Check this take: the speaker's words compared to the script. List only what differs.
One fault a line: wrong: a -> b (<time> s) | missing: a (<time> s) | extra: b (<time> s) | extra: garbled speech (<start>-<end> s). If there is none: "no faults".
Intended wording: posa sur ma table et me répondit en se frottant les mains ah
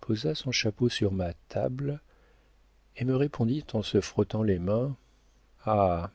extra: son chapeau (0.3 s)